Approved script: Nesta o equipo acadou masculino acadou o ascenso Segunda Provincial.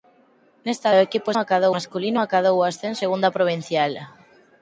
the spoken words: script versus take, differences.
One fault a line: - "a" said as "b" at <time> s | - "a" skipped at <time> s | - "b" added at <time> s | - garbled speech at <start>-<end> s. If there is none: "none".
none